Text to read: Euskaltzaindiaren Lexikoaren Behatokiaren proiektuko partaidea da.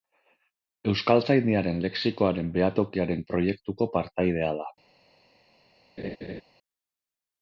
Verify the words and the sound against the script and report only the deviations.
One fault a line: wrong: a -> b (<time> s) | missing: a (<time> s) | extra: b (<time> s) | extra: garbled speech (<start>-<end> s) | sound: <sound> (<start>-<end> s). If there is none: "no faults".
sound: laugh (6.0-6.4 s)